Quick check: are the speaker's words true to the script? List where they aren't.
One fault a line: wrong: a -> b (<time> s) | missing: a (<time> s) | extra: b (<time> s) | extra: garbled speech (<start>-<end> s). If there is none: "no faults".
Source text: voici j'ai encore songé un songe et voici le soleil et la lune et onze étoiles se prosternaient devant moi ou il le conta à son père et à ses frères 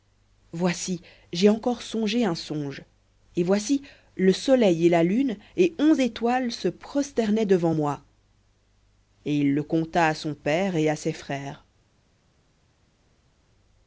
wrong: ou -> et (9.2 s)